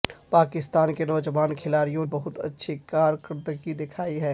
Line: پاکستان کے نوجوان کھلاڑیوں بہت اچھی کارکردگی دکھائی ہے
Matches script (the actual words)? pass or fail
pass